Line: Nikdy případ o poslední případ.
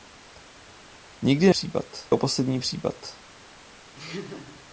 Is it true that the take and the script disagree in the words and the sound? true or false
true